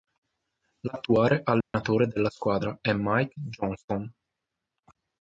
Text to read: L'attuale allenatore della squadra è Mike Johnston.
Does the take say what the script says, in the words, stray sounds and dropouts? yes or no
no